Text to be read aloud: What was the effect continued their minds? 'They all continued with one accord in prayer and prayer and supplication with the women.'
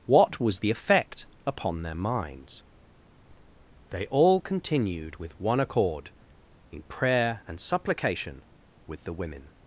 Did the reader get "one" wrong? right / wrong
right